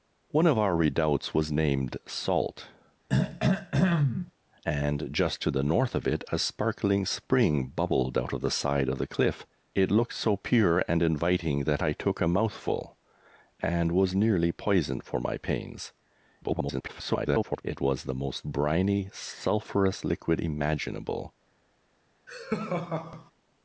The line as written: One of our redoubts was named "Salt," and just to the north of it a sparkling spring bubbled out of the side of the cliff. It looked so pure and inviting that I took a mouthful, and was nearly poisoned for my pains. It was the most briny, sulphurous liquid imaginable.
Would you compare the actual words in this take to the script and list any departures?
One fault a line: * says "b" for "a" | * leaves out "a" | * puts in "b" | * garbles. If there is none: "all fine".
* garbles